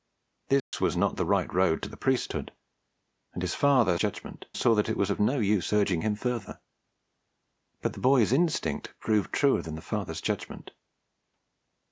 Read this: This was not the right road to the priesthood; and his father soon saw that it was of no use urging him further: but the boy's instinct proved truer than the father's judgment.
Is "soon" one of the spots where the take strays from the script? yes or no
yes